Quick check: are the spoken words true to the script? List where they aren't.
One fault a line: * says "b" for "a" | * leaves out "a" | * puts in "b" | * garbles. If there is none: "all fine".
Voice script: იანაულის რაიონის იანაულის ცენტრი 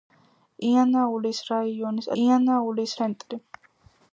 all fine